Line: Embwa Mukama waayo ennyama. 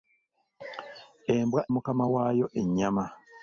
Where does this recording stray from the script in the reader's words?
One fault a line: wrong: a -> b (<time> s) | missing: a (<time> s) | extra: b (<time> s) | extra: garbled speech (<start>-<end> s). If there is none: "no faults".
no faults